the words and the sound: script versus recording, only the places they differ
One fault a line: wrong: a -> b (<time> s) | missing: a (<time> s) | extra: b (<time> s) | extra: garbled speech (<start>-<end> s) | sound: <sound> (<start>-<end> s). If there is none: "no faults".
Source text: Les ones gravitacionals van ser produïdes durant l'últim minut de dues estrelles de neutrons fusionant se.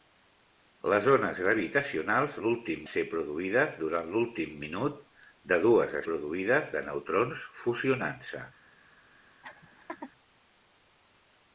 wrong: van -> l'últim (2.4 s)
wrong: estrelles -> produïdes (6.1 s)
sound: laugh (9.4-10.1 s)